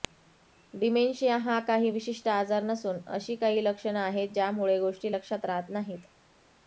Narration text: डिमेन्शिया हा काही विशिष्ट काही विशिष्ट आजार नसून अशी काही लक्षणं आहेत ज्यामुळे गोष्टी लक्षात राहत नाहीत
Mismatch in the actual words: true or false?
true